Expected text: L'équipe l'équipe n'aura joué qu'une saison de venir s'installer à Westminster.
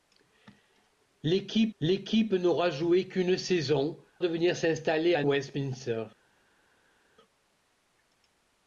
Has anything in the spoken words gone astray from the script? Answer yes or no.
no